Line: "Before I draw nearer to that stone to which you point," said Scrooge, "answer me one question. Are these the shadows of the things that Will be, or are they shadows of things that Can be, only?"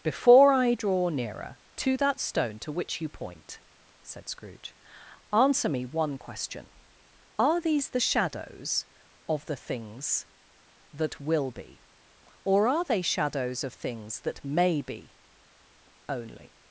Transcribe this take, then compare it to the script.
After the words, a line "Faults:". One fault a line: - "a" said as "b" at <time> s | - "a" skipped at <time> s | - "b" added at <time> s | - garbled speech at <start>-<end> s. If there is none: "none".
"Before I draw nearer to that stone to which you point," said Scrooge, "answer me one question. Are these the shadows of the things that Will be, or are they shadows of things that May be, only?"
Faults:
- "Can" said as "May" at 14.4 s